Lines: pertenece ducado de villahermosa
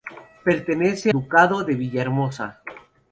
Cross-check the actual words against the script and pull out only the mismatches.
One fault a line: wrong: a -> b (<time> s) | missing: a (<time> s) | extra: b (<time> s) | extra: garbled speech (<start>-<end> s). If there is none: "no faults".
no faults